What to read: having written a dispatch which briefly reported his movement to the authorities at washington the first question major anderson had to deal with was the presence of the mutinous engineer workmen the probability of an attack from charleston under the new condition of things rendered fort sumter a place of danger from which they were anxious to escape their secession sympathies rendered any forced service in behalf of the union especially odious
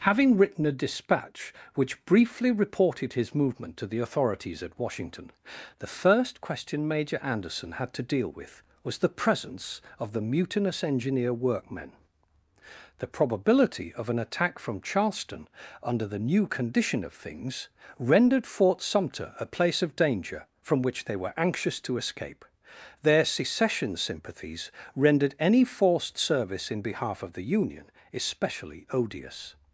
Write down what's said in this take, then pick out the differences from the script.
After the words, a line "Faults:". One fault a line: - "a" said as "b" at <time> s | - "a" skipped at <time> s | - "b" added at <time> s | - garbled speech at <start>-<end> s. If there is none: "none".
having written a dispatch which briefly reported his movement to the authorities at washington the first question major anderson had to deal with was the presence of the mutinous engineer workmen the probability of an attack from charleston under the new condition of things rendered fort sumter a place of danger from which they were anxious to escape their secession sympathies rendered any forced service in behalf of the union especially odious
Faults:
none